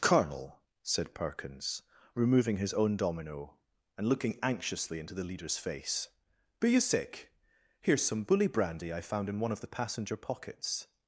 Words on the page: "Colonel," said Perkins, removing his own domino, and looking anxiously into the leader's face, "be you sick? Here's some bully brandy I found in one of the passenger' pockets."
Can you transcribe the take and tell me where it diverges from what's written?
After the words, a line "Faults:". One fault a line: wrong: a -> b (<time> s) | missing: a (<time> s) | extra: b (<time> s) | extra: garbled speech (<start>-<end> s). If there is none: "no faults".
"Colonel," said Perkins, removing his own domino, and looking anxiously into the leader's face, "be you sick? Here's some bully brandy I found in one of the passenger' pockets."
Faults:
no faults